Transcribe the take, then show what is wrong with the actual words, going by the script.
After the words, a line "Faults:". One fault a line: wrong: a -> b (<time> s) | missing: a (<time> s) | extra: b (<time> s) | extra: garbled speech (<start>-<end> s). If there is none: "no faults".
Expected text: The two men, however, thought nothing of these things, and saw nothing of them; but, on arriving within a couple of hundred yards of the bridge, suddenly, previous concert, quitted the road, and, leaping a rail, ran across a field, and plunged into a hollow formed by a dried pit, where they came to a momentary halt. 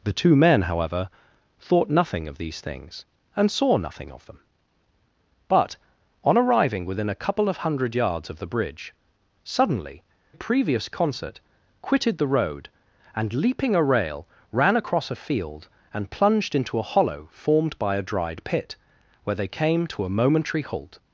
The two men, however, thought nothing of these things, and saw nothing of them; but, on arriving within a couple of hundred yards of the bridge, suddenly, previous concert, quitted the road, and, leaping a rail, ran across a field, and plunged into a hollow formed by a dried pit, where they came to a momentary halt.
Faults:
no faults